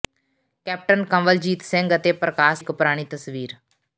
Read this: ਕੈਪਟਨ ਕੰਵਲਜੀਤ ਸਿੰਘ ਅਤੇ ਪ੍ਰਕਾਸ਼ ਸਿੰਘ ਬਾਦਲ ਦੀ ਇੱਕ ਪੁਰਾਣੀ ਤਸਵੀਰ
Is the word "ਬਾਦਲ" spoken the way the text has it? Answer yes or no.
no